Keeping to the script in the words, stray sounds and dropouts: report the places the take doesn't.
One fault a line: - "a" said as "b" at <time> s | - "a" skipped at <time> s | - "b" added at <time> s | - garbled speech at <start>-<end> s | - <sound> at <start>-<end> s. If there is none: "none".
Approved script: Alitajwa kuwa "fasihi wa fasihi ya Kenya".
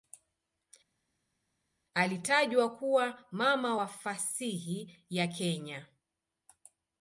- "fasihi" said as "mama" at 3.3 s